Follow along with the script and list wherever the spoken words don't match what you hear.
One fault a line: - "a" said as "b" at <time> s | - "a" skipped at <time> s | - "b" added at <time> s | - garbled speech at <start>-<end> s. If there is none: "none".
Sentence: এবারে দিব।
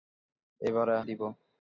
none